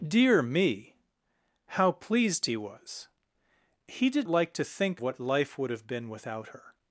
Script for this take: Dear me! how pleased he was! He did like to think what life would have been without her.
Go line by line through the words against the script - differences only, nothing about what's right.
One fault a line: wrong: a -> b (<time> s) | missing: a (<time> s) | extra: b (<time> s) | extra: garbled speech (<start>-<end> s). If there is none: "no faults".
no faults